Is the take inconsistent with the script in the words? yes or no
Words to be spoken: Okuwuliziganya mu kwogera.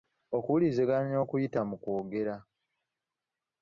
yes